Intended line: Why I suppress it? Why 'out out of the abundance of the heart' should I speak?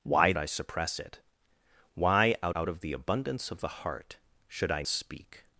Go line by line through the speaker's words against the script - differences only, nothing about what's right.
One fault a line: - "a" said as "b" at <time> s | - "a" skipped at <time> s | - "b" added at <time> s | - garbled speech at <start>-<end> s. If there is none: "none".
none